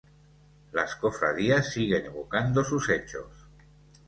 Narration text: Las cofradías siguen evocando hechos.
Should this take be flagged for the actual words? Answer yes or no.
yes